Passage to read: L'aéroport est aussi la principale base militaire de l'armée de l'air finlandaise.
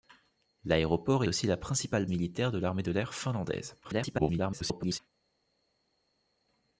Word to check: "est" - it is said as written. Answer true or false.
false